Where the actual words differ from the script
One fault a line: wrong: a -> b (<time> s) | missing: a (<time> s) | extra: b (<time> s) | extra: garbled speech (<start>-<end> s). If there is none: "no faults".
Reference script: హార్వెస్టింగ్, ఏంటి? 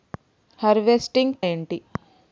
no faults